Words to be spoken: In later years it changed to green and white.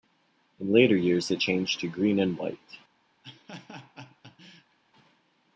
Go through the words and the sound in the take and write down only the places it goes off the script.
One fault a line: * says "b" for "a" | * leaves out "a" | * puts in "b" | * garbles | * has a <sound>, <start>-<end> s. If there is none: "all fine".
* has a laugh, 3.2-4.8 s